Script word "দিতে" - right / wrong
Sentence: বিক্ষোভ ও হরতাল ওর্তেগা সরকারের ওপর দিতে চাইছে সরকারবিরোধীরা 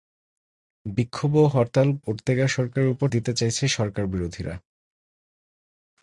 right